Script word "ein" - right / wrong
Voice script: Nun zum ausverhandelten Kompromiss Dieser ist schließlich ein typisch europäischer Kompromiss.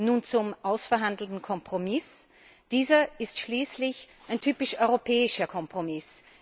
right